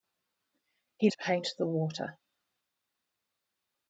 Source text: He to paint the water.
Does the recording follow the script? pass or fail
pass